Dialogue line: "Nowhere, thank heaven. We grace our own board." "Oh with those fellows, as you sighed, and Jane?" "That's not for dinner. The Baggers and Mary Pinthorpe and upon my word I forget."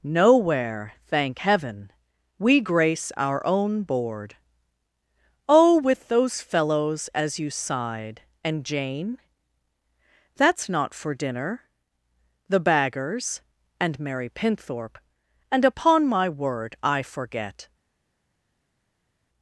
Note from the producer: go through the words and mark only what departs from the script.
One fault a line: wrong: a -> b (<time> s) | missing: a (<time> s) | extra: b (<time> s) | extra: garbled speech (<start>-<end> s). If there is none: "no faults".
no faults